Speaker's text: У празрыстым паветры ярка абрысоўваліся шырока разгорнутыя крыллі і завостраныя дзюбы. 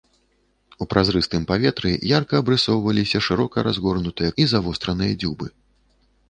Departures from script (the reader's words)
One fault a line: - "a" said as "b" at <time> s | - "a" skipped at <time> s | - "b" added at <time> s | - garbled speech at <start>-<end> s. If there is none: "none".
- "крыллі" skipped at 4.3 s